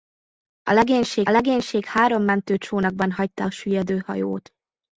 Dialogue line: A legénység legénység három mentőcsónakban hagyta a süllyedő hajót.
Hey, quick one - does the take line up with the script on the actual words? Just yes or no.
yes